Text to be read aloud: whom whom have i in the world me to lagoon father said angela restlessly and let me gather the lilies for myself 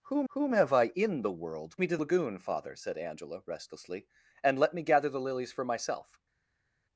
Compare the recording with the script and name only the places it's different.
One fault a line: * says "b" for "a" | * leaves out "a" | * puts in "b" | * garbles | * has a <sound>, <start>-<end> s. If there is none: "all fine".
all fine